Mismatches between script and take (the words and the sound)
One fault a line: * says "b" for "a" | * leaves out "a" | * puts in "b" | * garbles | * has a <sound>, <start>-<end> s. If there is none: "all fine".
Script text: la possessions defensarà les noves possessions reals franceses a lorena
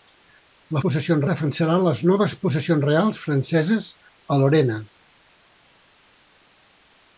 all fine